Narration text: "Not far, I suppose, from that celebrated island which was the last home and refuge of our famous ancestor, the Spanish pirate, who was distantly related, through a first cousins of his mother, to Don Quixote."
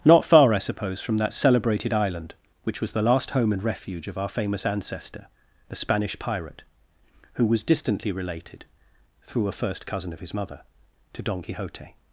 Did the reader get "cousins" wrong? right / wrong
wrong